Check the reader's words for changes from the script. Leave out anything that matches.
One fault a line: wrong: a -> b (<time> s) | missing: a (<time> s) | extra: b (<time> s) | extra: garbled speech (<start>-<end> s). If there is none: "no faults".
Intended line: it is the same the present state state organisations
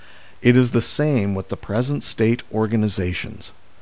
extra: with (1.3 s)
missing: state (2.4 s)